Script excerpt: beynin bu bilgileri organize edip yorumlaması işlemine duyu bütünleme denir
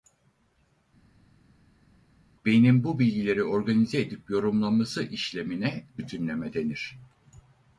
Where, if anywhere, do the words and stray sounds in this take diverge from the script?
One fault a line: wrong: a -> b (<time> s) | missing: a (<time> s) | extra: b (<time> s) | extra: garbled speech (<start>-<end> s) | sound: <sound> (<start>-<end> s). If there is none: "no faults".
missing: duyu (5.8 s)